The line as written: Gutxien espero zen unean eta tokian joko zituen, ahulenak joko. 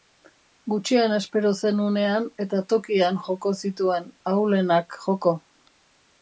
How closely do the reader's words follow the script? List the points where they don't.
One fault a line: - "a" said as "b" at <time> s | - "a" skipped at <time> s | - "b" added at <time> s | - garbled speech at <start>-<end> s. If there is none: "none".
none